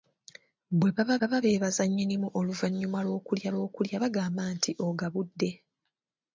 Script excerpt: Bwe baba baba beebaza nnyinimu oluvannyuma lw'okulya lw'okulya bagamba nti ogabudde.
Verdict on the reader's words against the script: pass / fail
pass